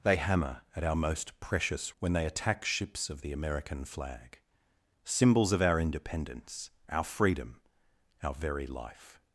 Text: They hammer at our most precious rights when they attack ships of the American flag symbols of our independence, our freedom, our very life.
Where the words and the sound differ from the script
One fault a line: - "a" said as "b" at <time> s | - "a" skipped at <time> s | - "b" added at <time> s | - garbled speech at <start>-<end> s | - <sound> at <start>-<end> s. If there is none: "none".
- "rights" skipped at 1.9 s